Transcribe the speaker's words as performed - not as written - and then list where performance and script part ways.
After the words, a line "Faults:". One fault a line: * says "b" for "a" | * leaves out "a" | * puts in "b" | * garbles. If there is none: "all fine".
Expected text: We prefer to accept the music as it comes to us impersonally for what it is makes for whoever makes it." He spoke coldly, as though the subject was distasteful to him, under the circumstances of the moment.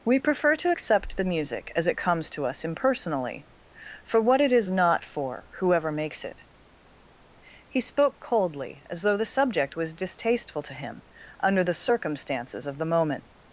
We prefer to accept the music as it comes to us impersonally for what it is not for whoever makes it." He spoke coldly, as though the subject was distasteful to him, under the circumstances of the moment.
Faults:
* says "not" for "makes"